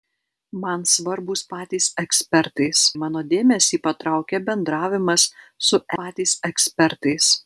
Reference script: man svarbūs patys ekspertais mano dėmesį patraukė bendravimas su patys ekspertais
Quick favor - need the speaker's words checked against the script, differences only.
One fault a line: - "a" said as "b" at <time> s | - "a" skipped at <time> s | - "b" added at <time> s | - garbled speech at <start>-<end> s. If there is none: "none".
none